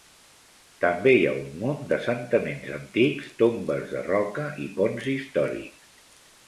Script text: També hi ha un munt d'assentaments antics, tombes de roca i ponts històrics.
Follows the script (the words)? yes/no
yes